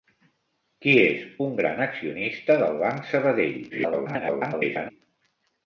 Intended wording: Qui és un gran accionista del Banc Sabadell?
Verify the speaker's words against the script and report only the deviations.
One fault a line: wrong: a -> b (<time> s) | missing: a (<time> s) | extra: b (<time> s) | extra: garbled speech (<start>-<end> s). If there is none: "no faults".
extra: garbled speech (3.7-4.9 s)